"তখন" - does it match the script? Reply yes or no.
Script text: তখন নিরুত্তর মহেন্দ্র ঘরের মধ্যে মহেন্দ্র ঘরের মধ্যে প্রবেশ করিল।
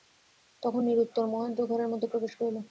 yes